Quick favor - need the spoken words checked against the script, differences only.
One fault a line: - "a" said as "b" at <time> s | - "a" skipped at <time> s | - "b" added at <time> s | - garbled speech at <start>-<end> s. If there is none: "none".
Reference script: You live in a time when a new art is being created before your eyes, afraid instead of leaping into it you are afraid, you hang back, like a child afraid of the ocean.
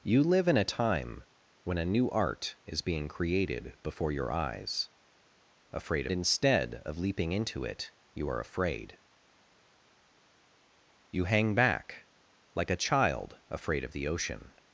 none